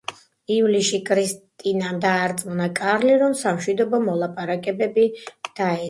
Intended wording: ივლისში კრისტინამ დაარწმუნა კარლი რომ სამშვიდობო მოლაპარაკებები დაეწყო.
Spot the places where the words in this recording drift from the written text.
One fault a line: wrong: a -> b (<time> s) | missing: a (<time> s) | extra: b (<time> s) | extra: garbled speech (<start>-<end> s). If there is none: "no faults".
no faults